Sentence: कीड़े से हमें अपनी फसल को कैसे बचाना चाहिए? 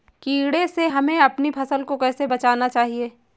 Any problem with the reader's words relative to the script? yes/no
no